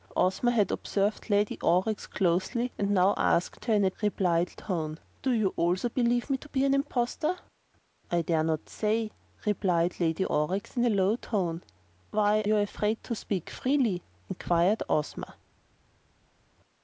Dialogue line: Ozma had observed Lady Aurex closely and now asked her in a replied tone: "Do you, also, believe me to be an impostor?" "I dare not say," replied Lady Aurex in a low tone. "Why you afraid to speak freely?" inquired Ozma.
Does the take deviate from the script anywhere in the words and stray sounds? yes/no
no